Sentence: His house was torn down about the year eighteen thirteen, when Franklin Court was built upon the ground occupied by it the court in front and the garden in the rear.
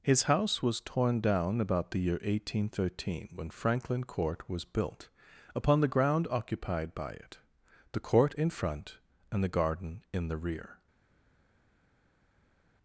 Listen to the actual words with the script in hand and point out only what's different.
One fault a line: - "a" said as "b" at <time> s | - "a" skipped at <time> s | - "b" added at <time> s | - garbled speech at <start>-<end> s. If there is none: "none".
none